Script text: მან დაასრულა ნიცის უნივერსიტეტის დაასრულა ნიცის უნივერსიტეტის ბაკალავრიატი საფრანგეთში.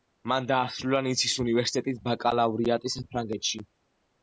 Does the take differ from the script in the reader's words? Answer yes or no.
yes